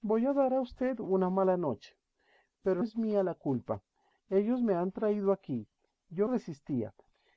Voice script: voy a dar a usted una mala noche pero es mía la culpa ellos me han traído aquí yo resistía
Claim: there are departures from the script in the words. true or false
false